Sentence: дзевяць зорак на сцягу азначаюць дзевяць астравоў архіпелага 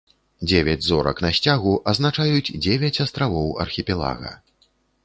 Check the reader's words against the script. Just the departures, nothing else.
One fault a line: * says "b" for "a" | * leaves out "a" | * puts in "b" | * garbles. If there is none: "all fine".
all fine